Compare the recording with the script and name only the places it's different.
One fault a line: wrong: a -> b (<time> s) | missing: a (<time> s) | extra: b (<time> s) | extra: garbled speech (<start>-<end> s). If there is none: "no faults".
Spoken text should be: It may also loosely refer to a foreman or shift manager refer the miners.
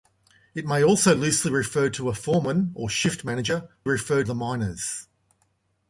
no faults